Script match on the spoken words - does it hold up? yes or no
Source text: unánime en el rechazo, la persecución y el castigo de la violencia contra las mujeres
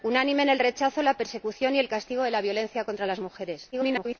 no